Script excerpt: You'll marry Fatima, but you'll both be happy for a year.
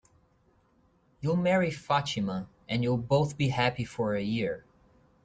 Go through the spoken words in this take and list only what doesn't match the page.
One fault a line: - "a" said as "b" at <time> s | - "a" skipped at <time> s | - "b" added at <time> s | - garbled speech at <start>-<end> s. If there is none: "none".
- "but" said as "and" at 2.7 s